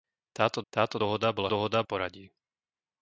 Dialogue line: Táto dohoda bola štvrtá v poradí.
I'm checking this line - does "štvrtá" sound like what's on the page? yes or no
no